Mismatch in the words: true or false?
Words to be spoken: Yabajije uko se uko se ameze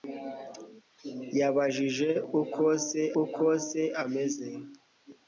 false